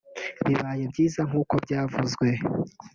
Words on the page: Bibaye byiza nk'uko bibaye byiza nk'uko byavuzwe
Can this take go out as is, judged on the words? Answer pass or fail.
fail